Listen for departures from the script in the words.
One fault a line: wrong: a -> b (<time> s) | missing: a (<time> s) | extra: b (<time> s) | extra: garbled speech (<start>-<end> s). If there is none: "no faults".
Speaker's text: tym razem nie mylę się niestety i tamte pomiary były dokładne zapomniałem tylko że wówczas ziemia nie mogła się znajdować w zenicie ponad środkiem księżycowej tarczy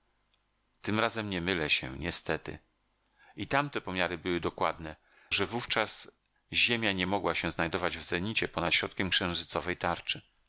missing: zapomniałem tylko (5.0 s)